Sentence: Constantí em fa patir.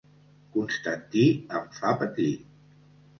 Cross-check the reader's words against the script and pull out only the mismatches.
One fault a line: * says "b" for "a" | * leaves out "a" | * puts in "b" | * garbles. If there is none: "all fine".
all fine